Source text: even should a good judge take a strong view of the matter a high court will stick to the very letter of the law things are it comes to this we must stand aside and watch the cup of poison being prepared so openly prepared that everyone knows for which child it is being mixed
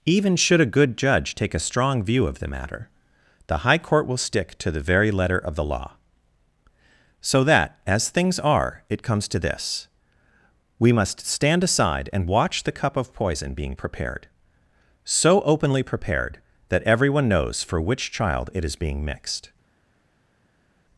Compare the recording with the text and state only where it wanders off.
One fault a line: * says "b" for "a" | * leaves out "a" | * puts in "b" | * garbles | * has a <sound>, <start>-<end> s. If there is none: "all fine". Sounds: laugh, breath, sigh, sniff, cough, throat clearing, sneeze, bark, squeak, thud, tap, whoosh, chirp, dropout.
* says "the" for "a"
* puts in "so that as"